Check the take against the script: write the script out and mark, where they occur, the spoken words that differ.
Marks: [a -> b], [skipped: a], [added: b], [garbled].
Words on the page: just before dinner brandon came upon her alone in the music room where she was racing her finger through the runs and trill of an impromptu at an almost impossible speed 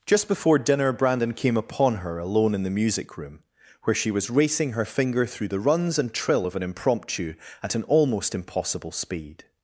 just before dinner brandon came upon her alone in the music room where she was racing her finger through the runs and trill of an impromptu at an almost impossible speed